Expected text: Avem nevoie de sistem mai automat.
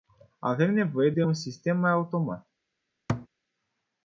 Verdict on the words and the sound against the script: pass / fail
fail